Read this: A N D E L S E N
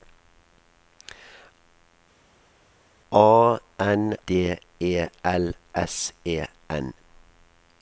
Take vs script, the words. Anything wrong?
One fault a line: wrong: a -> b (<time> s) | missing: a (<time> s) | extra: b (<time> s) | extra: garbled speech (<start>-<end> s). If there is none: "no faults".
no faults